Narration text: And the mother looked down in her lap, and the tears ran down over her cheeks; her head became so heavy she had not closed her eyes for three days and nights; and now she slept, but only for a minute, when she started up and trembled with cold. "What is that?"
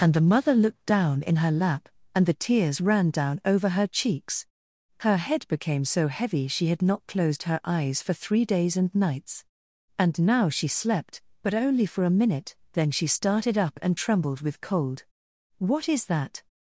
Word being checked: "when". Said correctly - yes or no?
no